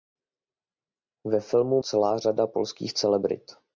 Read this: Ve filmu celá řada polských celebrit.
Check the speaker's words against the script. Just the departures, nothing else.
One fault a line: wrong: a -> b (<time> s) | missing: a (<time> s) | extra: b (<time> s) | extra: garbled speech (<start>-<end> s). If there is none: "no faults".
no faults